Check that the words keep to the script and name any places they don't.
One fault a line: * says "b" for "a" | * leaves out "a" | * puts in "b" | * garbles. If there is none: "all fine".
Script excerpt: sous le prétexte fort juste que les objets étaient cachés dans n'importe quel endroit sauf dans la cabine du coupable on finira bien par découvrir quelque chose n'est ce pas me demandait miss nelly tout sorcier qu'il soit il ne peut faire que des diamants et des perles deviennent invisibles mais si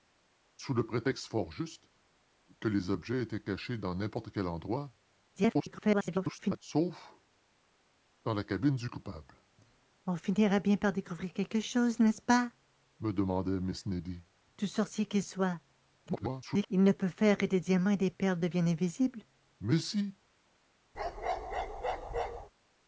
* garbles
* garbles